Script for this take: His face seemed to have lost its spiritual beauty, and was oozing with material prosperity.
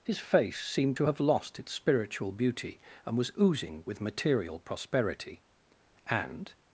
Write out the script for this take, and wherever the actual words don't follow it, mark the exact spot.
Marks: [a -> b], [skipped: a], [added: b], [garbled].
His face seemed to have lost its spiritual beauty, and was oozing with material prosperity. [added: And]